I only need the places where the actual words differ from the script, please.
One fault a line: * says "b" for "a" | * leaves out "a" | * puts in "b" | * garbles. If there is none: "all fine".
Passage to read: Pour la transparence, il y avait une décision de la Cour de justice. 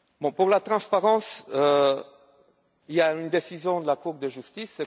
* says "a" for "avait"